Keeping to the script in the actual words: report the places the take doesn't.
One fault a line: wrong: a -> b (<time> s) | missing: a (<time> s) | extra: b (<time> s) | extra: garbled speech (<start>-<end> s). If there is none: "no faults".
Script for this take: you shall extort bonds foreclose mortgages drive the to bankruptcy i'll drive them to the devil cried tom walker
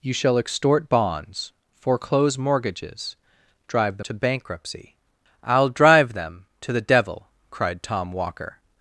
no faults